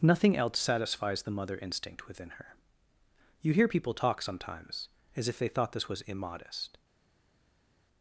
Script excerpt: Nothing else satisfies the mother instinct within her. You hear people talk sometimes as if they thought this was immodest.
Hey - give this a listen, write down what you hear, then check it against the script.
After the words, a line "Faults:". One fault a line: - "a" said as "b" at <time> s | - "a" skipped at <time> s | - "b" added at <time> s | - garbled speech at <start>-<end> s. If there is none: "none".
Nothing else satisfies the mother instinct within her. You hear people talk sometimes as if they thought this was immodest.
Faults:
none